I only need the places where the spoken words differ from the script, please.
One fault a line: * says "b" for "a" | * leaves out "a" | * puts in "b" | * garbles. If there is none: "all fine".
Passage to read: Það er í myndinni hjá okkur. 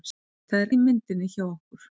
all fine